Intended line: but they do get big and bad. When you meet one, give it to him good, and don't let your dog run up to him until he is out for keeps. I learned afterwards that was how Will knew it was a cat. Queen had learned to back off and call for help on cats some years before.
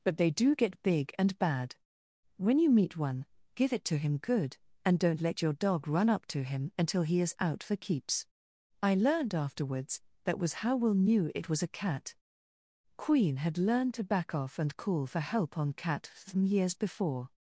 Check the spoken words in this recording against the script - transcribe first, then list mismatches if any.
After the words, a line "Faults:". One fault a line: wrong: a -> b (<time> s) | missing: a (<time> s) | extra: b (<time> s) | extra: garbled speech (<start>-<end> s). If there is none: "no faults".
but they do get big and bad. When you meet one, give it to him good, and don't let your dog run up to him until he is out for keeps. I learned afterwards that was how Will knew it was a cat. Queen had learned to back off and call for help on cat from years before.
Faults:
wrong: cats some -> cat from (15.7 s)